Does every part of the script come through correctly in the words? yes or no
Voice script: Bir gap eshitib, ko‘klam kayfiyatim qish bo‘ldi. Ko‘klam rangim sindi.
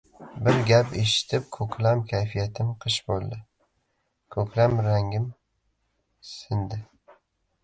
yes